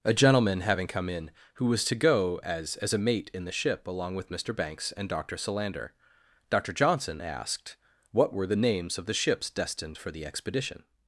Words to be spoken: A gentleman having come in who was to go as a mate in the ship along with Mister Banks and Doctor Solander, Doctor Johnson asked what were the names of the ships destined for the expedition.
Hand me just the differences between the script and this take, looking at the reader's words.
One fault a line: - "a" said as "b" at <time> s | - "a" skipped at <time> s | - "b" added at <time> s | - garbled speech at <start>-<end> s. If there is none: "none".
- "as" added at 2.8 s